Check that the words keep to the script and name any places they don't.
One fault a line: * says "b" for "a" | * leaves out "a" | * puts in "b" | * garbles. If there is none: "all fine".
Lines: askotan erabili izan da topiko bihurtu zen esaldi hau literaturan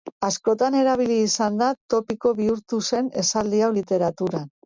all fine